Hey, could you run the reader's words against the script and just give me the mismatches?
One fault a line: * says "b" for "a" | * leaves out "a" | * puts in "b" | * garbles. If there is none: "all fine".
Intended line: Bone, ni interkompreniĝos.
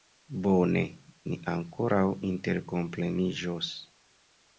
* puts in "ankoraŭ"